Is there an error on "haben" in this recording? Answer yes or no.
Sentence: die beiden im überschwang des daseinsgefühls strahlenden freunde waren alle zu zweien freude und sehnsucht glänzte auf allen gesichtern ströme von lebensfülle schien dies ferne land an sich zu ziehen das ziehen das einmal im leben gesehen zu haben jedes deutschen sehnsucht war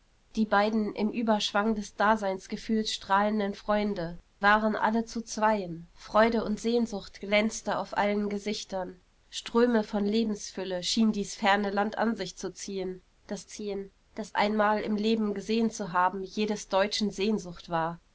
no